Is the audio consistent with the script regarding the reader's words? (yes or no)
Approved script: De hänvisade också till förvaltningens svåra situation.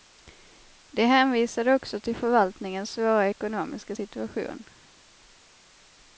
no